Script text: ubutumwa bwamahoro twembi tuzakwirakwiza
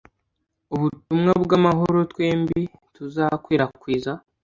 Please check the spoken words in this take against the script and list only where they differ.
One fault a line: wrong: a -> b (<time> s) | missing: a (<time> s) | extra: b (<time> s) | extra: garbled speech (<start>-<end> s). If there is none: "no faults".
no faults